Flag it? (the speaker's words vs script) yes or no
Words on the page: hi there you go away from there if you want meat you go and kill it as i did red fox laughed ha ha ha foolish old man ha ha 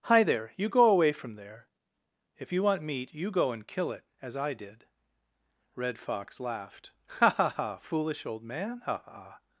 no